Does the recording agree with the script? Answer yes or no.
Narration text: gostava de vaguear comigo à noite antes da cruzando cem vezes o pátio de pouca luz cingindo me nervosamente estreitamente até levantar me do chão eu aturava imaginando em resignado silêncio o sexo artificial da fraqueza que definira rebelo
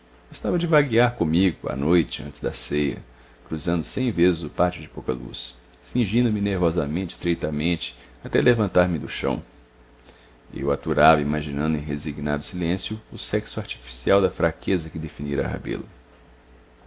no